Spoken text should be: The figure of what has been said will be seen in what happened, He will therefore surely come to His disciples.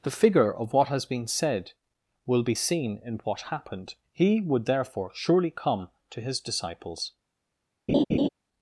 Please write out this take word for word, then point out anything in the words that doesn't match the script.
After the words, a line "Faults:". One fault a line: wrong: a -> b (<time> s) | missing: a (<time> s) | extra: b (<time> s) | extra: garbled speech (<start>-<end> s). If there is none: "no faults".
The figure of what has been said will be seen in what happened, He would therefore surely come to His disciples.
Faults:
wrong: will -> would (4.4 s)